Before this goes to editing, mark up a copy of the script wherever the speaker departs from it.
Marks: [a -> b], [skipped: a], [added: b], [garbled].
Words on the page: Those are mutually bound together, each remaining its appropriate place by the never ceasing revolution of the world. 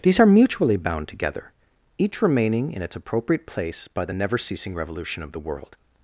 [Those -> These] are mutually bound together, each remaining [added: in] its appropriate place by the never ceasing revolution of the world.